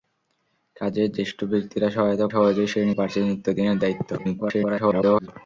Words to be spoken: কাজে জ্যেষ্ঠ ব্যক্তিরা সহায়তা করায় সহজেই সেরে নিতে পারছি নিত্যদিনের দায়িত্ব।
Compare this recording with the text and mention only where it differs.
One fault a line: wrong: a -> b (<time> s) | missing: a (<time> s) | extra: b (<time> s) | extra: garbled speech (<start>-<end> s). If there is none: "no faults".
missing: করায় (2.3 s)
missing: নিতে (2.9 s)
extra: garbled speech (4.2-5.3 s)